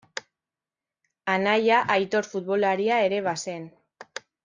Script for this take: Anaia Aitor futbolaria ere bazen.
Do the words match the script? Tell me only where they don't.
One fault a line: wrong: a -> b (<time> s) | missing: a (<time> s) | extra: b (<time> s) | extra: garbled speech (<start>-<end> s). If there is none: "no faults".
no faults